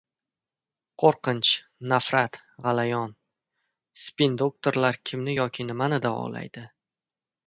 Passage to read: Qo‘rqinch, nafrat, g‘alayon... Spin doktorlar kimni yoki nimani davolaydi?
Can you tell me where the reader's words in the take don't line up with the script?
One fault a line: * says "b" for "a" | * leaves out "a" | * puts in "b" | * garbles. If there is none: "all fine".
all fine